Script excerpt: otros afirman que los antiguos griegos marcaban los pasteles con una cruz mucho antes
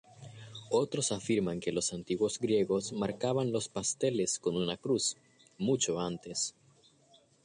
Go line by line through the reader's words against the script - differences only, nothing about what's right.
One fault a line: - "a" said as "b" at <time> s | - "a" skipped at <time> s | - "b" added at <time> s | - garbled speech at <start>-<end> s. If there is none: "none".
none